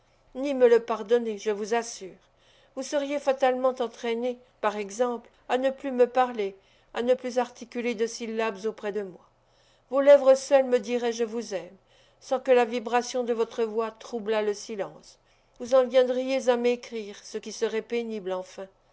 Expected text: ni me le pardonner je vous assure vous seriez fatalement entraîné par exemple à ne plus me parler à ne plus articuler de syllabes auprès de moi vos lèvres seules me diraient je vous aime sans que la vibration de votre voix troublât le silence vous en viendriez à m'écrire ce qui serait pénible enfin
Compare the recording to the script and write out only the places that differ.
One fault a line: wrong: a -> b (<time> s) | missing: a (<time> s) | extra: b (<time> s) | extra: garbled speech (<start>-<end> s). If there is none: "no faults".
no faults